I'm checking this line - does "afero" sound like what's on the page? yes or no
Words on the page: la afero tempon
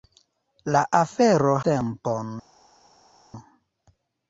yes